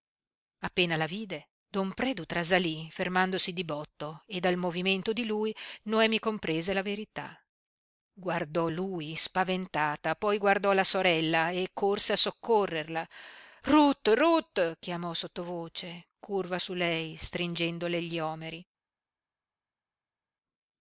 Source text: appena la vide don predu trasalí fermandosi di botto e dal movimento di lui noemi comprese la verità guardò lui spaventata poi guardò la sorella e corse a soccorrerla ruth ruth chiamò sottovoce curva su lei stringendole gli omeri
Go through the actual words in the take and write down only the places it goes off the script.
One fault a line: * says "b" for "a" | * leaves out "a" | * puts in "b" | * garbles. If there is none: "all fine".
all fine